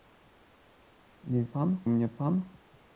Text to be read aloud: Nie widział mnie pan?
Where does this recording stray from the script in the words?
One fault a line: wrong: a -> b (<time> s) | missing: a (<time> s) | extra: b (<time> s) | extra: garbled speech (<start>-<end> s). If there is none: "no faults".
wrong: widział -> pan (1.4 s)